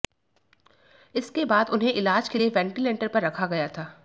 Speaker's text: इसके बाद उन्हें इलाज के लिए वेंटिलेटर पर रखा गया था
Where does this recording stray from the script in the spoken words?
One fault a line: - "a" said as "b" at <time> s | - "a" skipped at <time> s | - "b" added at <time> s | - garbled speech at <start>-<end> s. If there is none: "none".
none